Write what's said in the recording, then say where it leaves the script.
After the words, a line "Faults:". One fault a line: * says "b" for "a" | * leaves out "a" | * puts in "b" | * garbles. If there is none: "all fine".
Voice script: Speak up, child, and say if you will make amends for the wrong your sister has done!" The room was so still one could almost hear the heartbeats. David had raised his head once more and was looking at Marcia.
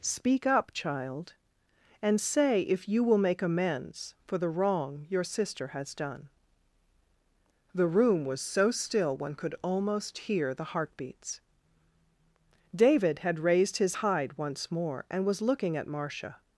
Speak up, child, and say if you will make amends for the wrong your sister has done!" The room was so still one could almost hear the heartbeats. David had raised his hide once more and was looking at Marcia.
Faults:
* says "hide" for "head"